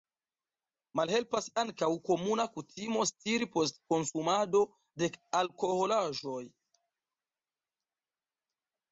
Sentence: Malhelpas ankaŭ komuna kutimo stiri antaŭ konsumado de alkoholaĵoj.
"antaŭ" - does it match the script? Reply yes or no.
no